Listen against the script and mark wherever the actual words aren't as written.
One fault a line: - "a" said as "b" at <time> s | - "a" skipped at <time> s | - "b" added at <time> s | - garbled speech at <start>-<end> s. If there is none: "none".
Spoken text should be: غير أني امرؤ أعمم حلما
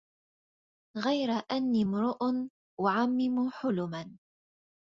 none